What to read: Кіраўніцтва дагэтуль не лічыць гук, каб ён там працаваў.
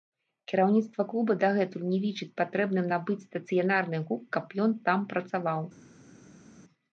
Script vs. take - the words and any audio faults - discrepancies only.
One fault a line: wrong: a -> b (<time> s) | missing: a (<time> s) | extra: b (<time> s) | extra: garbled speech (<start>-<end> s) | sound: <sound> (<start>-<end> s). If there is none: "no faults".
extra: клуба (1.1 s)
extra: патрэбным набыць стацыянарны (2.4 s)